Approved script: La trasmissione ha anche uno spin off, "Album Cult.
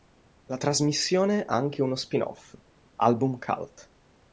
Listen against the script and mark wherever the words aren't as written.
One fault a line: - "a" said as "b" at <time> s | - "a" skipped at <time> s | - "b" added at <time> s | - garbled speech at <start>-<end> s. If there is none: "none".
none